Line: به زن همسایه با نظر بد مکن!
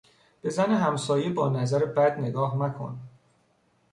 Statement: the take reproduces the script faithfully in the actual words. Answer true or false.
false